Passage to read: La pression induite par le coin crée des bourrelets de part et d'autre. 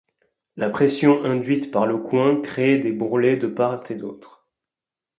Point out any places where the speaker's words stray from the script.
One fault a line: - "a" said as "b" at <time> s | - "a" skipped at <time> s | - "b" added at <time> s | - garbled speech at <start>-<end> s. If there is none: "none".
none